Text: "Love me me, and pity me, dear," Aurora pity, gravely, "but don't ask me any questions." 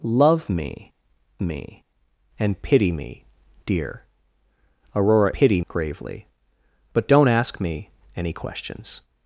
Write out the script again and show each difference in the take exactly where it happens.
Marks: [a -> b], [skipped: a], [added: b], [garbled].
"Love me me, and pity me, dear," Aurora pity, gravely, "but don't ask me any questions."